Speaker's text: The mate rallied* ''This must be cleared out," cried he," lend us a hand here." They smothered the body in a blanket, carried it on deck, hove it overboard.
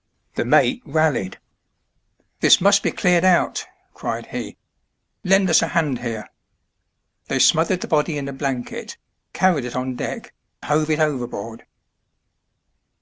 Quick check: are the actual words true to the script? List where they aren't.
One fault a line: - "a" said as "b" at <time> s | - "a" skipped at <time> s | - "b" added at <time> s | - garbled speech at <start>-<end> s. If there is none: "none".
none